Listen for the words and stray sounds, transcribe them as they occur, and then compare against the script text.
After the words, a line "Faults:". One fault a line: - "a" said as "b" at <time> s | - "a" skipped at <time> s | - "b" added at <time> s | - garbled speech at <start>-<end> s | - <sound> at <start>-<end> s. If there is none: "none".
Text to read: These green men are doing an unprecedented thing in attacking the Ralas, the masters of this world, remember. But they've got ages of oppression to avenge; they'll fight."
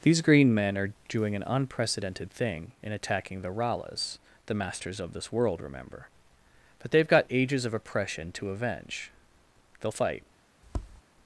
These green men are doing an unprecedented thing in attacking the Ralas, the masters of this world, remember. But they've got ages of oppression to avenge; they'll fight."
Faults:
- tap at 10.6-11.0 s